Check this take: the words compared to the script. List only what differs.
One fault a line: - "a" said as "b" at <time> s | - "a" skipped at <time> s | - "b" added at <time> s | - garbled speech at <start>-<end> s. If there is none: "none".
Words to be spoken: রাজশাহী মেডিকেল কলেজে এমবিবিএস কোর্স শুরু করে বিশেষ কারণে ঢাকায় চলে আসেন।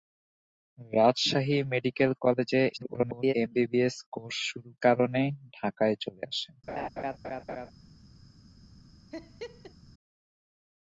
- garbled speech at 2.7-3.3 s
- "করে বিশেষ" skipped at 4.7 s